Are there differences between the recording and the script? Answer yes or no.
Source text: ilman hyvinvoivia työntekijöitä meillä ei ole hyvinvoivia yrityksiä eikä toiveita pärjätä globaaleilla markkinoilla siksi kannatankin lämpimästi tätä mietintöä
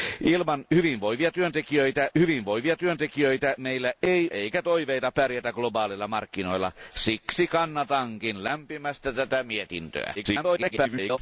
yes